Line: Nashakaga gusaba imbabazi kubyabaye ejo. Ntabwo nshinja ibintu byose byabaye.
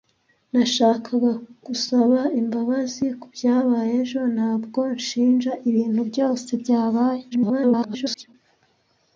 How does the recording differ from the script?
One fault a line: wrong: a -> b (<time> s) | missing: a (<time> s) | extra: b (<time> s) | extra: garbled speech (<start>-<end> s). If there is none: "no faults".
extra: garbled speech (7.3-8.3 s)